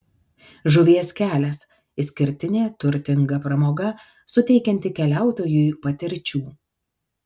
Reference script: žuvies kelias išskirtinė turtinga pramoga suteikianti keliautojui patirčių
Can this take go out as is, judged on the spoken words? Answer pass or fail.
pass